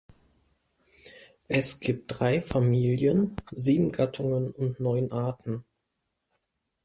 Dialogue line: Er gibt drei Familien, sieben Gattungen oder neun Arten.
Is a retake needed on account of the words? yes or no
yes